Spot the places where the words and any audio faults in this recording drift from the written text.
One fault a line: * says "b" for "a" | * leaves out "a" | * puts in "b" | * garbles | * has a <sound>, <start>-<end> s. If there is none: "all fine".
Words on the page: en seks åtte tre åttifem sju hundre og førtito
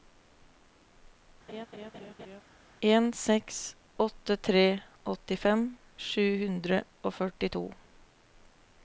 * has a laugh, 1.5-2.4 s